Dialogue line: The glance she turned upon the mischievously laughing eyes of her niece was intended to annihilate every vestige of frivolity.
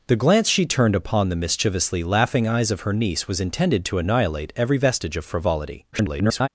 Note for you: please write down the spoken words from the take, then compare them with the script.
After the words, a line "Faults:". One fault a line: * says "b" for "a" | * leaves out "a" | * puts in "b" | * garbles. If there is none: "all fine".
The glance she turned upon the mischievously laughing eyes of her niece was intended to annihilate every vestige of frivolity. [garbled]
Faults:
* garbles